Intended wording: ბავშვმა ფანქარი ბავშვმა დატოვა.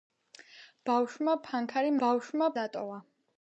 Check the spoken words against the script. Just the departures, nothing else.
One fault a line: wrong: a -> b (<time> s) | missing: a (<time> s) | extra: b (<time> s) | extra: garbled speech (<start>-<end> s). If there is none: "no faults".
no faults